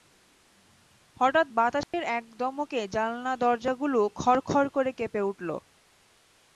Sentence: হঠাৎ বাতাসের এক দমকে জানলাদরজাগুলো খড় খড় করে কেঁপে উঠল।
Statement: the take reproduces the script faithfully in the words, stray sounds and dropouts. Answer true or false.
false